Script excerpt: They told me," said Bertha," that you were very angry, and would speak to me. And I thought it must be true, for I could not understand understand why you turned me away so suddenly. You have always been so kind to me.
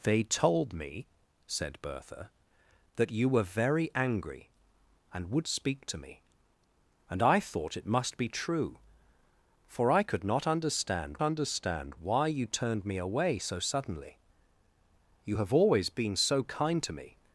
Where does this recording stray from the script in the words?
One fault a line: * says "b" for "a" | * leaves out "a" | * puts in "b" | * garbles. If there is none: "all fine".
all fine